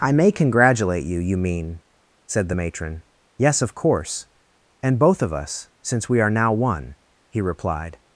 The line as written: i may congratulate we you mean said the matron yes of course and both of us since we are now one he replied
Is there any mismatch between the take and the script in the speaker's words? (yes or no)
yes